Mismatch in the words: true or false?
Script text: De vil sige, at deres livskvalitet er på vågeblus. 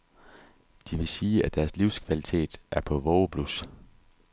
false